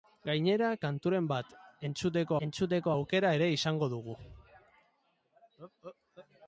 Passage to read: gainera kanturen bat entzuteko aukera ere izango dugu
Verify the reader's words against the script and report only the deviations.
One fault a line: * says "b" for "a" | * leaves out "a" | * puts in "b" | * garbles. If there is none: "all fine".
* puts in "entzuteko"